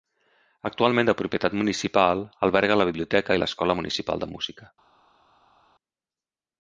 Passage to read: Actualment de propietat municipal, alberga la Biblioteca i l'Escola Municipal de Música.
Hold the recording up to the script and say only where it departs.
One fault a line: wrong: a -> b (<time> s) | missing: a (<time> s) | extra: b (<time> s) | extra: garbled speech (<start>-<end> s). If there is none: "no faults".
no faults